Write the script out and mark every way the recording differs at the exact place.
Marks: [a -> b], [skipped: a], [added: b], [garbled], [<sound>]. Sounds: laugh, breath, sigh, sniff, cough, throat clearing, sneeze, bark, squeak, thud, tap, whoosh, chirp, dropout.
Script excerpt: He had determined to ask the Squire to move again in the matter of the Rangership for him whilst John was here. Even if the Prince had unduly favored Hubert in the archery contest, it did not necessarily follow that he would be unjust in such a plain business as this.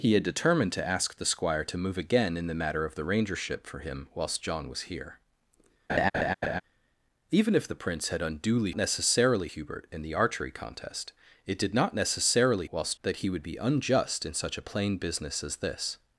He had determined to ask the Squire to move again in the matter of the Rangership for him whilst John was here. [laugh] Even if the Prince had unduly [favored -> necessarily] Hubert in the archery contest, it did not necessarily [follow -> whilst] that he would be unjust in such a plain business as this.